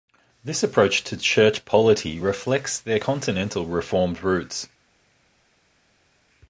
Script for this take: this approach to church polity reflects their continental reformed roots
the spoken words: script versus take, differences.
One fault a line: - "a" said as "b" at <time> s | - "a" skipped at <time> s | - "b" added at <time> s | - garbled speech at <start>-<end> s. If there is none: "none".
none